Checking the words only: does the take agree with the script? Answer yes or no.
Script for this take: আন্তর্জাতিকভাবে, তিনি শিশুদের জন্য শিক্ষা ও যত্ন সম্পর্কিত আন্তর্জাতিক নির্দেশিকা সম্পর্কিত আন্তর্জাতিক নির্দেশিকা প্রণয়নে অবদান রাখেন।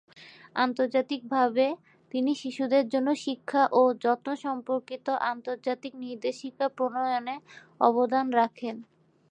no